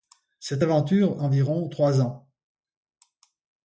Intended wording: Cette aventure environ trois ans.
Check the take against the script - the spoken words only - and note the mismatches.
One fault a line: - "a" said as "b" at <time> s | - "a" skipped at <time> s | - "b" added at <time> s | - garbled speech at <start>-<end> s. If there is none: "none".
none